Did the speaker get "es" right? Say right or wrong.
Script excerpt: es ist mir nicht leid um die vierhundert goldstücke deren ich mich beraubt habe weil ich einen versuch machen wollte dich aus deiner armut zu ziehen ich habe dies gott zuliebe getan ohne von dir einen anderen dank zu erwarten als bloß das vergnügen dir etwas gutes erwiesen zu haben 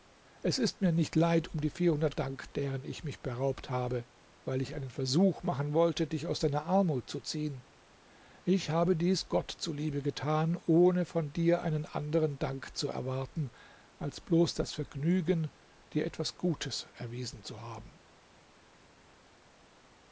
right